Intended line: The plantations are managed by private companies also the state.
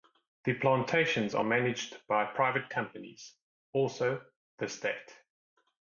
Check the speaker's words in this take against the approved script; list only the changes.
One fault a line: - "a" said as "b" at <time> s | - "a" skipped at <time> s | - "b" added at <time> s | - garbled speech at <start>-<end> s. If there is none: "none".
none